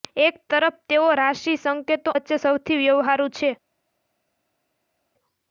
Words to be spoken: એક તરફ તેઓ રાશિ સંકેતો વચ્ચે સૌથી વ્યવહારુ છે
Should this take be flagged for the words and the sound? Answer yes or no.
no